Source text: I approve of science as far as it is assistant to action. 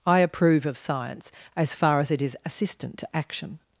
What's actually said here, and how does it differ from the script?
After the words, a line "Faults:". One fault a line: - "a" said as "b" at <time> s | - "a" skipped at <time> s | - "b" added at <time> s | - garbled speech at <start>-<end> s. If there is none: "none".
I approve of science as far as it is assistant to action.
Faults:
none